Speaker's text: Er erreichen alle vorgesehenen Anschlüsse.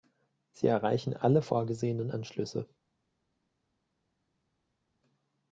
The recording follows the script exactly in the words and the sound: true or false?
false